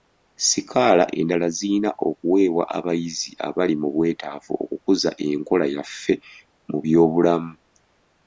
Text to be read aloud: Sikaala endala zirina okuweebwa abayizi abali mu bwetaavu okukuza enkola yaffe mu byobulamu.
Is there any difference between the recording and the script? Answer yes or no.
no